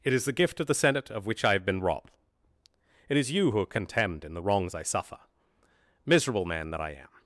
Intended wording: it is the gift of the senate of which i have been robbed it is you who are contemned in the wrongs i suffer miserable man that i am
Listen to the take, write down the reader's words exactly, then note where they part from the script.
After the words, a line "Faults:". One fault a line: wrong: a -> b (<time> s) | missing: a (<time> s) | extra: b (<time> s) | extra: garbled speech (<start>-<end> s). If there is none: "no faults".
it is the gift of the senate of which i have been robbed it is you who are contemned in the wrongs i suffer miserable man that i am
Faults:
no faults